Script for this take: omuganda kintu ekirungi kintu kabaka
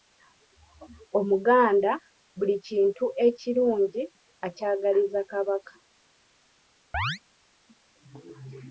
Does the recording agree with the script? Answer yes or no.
no